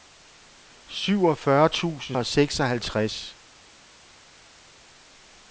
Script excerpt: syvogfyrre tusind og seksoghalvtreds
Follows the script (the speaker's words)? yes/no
yes